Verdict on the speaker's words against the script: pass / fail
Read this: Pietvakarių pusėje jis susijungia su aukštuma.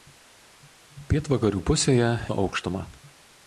fail